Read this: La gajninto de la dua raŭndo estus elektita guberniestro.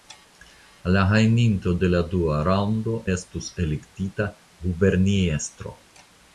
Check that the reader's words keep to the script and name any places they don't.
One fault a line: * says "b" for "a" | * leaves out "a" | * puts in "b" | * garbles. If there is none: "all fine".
all fine